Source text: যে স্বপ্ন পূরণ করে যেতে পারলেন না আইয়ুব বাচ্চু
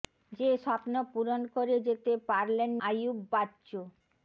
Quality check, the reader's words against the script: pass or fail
fail